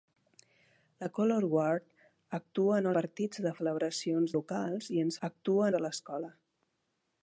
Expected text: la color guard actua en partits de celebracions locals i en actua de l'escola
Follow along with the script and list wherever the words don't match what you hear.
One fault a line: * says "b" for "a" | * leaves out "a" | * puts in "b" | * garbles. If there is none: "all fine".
all fine